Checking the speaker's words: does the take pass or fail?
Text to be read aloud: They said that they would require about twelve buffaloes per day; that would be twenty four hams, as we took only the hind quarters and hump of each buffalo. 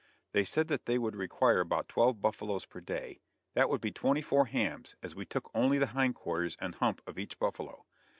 pass